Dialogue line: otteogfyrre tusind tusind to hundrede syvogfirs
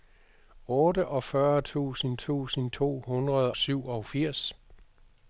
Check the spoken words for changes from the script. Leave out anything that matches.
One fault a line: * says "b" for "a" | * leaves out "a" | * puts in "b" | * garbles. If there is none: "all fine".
all fine